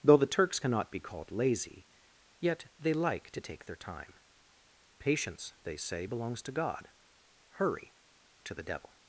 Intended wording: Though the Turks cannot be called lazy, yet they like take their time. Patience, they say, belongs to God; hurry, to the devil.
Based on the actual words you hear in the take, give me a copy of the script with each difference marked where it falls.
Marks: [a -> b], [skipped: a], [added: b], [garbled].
Though the Turks cannot be called lazy, yet they like [added: to] take their time. Patience, they say, belongs to God; hurry, to the devil.